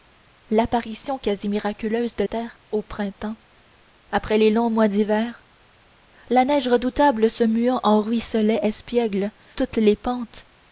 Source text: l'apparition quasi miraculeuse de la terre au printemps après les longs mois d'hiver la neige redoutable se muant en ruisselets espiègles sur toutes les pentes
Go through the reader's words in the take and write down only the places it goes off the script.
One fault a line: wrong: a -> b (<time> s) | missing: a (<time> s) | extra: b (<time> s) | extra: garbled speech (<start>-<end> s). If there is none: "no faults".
missing: la (2.2 s)
missing: sur (9.3 s)